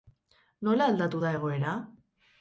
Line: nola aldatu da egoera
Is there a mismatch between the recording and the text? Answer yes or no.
no